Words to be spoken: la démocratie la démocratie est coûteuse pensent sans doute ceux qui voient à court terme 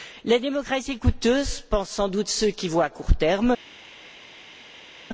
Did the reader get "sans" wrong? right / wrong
right